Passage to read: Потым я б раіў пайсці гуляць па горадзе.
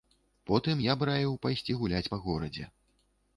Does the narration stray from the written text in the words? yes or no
no